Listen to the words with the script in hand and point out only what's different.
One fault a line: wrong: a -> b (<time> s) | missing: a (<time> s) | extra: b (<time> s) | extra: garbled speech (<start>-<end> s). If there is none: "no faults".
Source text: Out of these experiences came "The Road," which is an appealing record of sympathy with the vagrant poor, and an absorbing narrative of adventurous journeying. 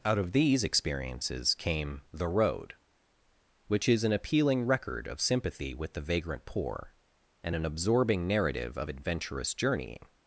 no faults